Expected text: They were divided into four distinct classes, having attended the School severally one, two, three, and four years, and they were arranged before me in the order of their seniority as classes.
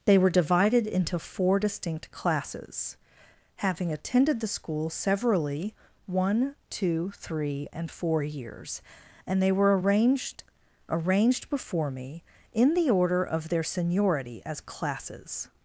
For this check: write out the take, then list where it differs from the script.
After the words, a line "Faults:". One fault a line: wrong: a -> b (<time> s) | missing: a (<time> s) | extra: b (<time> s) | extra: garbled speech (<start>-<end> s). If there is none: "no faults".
They were divided into four distinct classes, having attended the School severally one, two, three, and four years, and they were arranged arranged before me in the order of their seniority as classes.
Faults:
extra: arranged (10.9 s)